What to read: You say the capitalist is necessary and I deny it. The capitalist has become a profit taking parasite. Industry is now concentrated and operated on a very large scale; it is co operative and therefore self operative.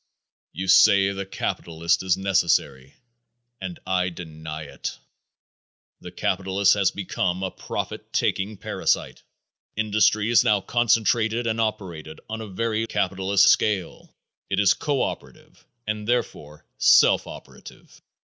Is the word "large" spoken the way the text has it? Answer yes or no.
no